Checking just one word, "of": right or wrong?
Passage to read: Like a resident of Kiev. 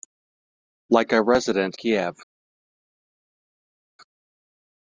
wrong